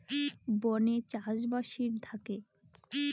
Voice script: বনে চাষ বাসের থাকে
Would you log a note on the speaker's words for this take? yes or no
no